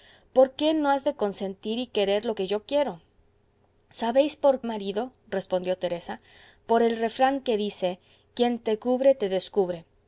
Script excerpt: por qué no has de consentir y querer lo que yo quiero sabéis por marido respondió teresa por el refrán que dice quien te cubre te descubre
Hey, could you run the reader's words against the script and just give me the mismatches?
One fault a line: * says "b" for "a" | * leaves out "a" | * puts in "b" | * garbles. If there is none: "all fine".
all fine